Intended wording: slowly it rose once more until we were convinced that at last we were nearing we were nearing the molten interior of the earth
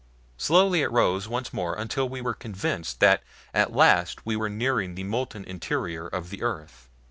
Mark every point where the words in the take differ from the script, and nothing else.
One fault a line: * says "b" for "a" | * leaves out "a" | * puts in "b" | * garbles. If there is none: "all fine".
* leaves out "we were nearing"